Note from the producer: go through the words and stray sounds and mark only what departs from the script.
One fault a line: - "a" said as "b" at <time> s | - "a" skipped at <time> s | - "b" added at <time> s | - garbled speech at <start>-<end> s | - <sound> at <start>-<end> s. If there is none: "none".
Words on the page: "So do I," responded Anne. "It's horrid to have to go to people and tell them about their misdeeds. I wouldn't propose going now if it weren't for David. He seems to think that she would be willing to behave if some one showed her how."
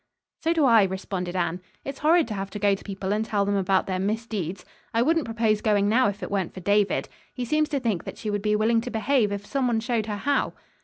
none